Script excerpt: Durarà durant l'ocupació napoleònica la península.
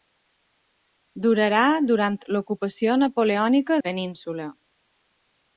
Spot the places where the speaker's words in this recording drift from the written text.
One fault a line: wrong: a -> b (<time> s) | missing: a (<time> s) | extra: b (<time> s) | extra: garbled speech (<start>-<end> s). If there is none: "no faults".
no faults